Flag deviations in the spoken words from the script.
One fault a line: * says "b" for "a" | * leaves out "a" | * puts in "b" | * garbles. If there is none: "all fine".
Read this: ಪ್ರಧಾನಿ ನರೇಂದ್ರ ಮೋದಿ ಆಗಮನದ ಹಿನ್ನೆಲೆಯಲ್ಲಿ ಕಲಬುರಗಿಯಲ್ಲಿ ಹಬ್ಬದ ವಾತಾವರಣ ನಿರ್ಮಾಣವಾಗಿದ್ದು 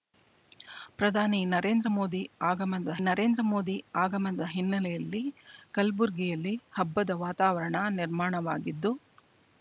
* puts in "ನರೇಂದ್ರ ಮೋದಿ ಆಗಮನದ"